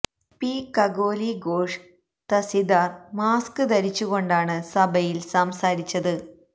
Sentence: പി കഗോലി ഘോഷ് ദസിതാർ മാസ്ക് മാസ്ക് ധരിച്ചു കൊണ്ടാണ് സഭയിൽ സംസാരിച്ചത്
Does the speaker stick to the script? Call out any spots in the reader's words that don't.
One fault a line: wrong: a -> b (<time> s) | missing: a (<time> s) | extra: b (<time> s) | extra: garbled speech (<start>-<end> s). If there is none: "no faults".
missing: മാസ്ക് (3.6 s)